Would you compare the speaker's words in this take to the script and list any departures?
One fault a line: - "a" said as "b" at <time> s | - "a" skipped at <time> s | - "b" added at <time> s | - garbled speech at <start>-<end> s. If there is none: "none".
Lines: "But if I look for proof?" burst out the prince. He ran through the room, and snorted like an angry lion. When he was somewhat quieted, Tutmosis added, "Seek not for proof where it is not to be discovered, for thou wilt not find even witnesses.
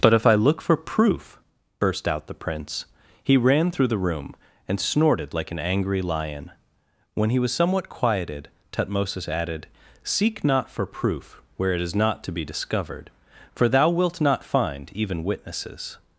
none